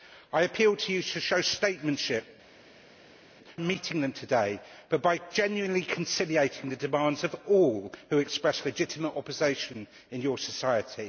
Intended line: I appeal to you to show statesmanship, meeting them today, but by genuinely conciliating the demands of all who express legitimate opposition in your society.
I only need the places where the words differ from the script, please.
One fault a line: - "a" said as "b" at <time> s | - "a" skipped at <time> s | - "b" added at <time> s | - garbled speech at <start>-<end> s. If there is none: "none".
none